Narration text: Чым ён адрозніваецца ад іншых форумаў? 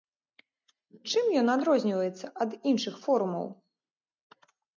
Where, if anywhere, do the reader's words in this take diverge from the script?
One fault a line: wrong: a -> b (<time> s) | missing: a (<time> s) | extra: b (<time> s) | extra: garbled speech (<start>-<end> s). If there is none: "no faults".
no faults